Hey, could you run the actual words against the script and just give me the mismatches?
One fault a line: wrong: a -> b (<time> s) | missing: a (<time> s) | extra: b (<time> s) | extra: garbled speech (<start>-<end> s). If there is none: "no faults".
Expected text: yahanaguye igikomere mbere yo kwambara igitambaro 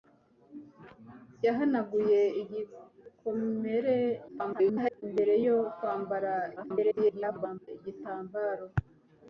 extra: garbled speech (4.3-5.0 s)
extra: garbled speech (6.6-7.7 s)